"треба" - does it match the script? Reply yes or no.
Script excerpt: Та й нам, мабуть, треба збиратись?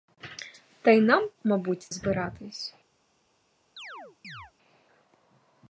no